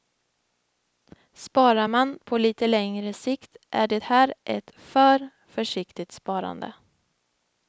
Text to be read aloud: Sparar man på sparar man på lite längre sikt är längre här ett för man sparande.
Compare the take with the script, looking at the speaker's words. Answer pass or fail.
fail